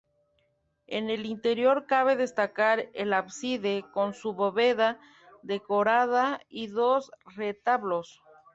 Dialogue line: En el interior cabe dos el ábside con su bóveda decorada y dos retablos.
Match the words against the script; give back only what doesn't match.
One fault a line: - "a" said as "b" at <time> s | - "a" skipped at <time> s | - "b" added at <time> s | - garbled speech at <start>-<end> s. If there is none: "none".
- "dos" said as "destacar" at 2.2 s